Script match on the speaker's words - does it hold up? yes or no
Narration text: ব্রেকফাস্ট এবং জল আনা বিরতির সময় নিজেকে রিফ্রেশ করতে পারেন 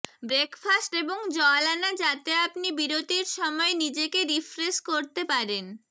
no